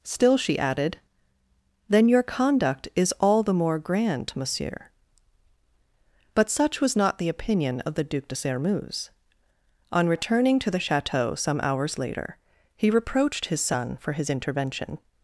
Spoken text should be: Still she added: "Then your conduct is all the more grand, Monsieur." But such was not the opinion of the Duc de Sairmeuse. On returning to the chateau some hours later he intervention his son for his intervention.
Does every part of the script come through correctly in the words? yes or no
no